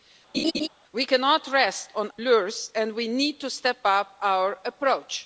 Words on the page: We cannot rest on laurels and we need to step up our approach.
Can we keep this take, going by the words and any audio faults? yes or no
no